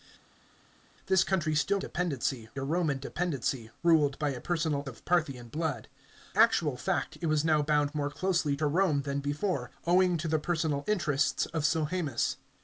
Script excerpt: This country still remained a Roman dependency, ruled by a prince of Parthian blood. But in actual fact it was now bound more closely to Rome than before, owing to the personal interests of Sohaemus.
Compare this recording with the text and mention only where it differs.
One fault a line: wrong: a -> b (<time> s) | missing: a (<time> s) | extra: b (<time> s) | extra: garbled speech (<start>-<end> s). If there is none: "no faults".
wrong: remained -> dependency (1.8 s)
wrong: prince -> personal (4.4 s)
missing: But in (5.9 s)